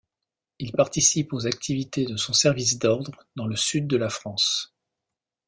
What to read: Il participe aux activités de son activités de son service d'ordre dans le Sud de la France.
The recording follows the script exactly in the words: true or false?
false